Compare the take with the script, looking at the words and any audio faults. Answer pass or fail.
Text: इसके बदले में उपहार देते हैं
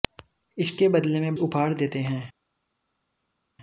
pass